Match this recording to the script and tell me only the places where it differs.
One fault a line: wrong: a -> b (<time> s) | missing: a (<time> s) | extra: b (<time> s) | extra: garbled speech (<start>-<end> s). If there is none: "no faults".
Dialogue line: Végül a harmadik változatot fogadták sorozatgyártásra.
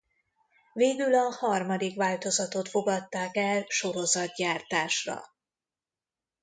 extra: el (3.3 s)